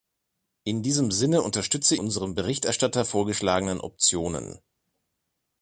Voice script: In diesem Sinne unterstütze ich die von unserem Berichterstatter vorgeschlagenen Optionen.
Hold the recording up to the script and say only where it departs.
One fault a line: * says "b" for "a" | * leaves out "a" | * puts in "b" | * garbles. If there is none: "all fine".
* leaves out "ich die von"